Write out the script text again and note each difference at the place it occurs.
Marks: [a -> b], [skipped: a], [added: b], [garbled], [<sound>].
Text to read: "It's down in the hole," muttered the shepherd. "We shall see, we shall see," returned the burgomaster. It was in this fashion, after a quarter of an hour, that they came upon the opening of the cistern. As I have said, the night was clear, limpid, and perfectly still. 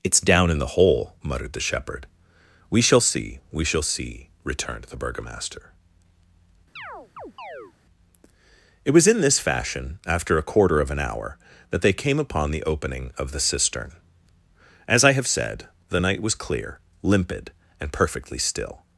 "It's down in the hole," muttered the shepherd. "We shall see, we shall see," returned the burgomaster. [chirp] It was in this fashion, after a quarter of an hour, that they came upon the opening of the cistern. As I have said, the night was clear, limpid, and perfectly still.